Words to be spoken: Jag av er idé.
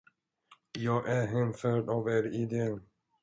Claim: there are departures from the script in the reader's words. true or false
true